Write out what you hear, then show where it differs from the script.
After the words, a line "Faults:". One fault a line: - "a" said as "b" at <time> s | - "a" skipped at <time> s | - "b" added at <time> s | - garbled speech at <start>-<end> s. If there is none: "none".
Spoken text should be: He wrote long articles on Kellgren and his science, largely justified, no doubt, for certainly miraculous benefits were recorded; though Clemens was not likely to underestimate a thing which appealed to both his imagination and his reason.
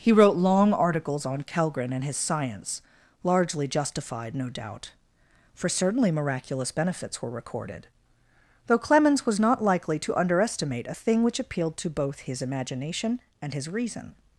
He wrote long articles on Kellgren and his science, largely justified, no doubt, for certainly miraculous benefits were recorded; though Clemens was not likely to underestimate a thing which appealed to both his imagination and his reason.
Faults:
none